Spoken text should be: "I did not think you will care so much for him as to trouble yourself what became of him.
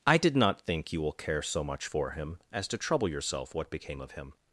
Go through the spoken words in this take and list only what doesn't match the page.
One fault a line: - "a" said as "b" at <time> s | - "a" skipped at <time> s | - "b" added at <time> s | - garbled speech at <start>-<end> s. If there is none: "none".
none